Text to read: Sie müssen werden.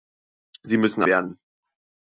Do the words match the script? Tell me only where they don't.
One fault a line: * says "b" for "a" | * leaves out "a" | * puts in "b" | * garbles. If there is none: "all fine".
all fine